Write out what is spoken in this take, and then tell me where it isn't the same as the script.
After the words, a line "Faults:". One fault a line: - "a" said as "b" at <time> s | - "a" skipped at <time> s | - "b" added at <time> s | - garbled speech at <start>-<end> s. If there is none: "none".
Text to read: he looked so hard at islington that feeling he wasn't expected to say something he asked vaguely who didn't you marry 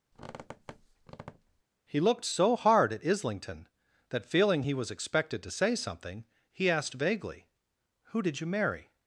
he looked so hard at islington that feeling he was expected to say something he asked vaguely who did you marry
Faults:
- "wasn't" said as "was" at 4.7 s
- "didn't" said as "did" at 8.2 s